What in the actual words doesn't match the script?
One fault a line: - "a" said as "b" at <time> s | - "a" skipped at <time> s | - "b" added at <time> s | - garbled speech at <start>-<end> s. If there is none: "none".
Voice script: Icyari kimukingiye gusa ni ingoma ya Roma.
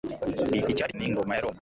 - "kimukingiye gusa" skipped at 0.9 s